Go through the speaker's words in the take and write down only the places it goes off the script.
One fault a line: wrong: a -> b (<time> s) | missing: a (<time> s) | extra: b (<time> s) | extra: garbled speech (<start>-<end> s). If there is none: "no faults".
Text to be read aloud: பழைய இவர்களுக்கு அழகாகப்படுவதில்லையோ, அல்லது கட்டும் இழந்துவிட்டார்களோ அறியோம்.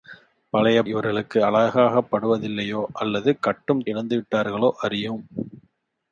no faults